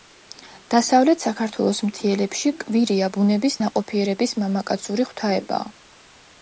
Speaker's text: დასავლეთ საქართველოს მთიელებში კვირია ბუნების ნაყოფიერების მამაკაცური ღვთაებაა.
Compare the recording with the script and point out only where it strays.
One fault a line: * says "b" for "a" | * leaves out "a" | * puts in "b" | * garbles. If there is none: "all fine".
all fine